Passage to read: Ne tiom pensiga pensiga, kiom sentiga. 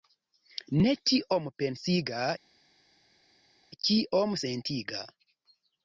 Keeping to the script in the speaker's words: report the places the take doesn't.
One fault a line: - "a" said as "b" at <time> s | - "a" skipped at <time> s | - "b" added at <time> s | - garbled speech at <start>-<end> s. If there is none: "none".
- "pensiga" skipped at 2.2 s